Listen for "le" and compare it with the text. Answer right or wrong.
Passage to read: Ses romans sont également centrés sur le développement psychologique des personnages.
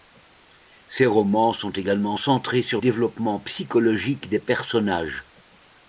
wrong